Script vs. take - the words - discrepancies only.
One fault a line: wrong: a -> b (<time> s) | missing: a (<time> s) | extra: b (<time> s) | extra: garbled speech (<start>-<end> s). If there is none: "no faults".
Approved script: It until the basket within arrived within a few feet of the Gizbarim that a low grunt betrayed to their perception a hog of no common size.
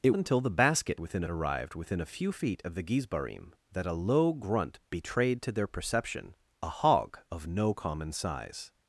no faults